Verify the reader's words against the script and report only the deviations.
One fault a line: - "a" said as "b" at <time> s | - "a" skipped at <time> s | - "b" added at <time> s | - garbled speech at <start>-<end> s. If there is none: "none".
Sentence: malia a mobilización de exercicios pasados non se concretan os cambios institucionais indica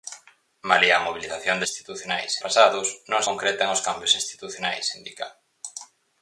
- "exercicios" said as "institucionais" at 1.7 s
- "se" skipped at 3.2 s